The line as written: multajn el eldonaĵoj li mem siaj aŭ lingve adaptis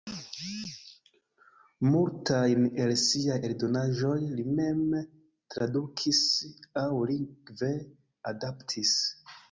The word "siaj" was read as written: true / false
false